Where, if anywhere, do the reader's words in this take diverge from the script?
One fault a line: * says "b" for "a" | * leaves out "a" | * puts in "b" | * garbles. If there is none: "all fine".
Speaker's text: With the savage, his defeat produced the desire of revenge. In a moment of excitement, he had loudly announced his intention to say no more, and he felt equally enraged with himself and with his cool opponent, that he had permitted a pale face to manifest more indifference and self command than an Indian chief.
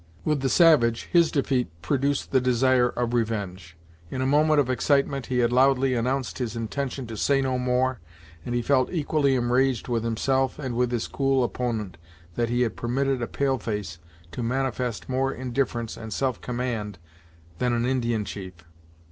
all fine